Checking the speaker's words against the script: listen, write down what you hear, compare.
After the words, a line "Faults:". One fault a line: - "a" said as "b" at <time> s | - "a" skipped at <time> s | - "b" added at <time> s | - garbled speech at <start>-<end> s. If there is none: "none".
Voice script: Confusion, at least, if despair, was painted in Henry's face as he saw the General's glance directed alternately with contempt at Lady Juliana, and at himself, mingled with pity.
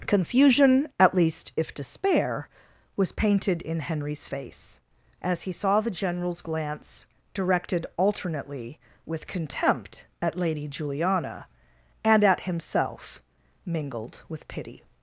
Confusion, at least, if despair, was painted in Henry's face as he saw the General's glance directed alternately with contempt at Lady Juliana, and at himself, mingled with pity.
Faults:
none